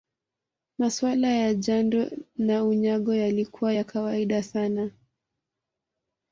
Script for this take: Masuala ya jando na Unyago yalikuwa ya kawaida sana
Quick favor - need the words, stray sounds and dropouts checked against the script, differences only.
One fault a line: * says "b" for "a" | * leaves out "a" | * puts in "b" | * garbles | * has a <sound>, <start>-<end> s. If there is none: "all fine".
all fine